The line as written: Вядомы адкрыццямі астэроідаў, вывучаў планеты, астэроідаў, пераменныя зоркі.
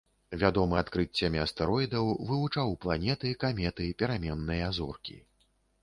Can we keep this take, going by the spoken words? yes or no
no